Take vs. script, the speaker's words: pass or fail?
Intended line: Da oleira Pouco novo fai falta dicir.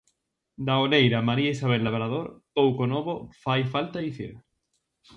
fail